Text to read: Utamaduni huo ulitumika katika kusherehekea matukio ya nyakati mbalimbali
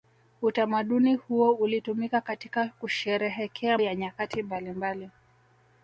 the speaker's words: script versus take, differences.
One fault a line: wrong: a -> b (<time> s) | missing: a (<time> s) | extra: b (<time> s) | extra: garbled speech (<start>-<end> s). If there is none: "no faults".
missing: matukio (3.8 s)